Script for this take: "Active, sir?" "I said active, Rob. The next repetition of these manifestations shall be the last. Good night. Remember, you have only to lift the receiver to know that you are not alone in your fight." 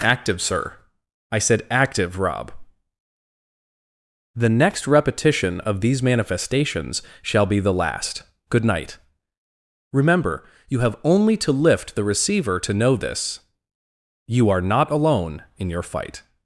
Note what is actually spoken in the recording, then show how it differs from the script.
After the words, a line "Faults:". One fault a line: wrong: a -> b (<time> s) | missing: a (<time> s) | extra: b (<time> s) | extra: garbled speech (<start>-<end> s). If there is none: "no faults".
"Active, sir?" "I said active, Rob. The next repetition of these manifestations shall be the last. Good night. Remember, you have only to lift the receiver to know this you are not alone in your fight."
Faults:
wrong: that -> this (12.9 s)